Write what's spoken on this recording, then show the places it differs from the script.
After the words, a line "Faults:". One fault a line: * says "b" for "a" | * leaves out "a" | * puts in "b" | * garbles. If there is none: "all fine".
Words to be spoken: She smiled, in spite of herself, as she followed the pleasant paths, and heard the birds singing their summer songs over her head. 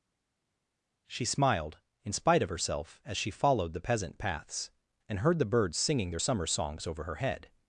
She smiled, in spite of herself, as she followed the peasant paths, and heard the birds singing their summer songs over her head.
Faults:
* says "peasant" for "pleasant"